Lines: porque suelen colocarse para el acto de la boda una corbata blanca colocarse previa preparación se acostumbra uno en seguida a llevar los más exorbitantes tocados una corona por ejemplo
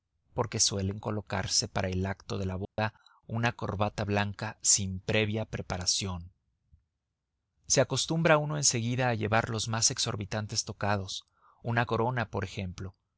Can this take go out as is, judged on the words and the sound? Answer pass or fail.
fail